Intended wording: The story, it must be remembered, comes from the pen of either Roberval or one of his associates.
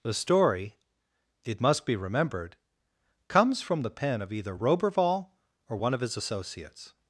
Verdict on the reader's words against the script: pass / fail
pass